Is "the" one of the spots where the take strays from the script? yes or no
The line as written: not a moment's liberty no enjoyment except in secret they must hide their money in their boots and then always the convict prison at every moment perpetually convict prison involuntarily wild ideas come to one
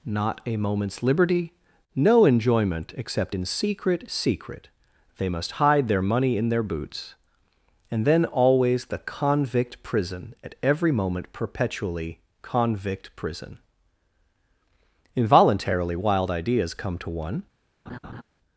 no